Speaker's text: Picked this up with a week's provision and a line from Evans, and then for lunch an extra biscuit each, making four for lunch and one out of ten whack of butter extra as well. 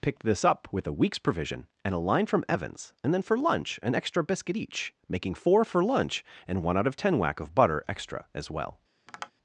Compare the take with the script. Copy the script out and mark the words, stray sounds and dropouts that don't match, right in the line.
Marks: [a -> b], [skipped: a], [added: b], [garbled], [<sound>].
Picked this up with a week's provision and a line from Evans, and then for lunch an extra biscuit each, making four for lunch and one out of ten whack of butter extra as well. [tap]